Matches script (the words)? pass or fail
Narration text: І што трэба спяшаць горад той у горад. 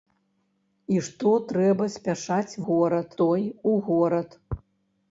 pass